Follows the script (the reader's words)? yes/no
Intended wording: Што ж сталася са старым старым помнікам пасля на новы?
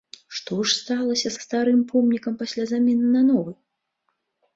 no